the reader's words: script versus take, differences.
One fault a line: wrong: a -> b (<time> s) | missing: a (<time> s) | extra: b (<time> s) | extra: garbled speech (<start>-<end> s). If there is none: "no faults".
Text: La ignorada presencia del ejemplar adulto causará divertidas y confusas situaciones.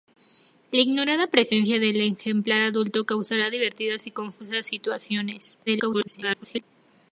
extra: garbled speech (5.7-6.6 s)